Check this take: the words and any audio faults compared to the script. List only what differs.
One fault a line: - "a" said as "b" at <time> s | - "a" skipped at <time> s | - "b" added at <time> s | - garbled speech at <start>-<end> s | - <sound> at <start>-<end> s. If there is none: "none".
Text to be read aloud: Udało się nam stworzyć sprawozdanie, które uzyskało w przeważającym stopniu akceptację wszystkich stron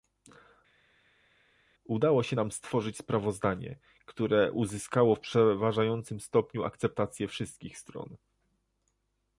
none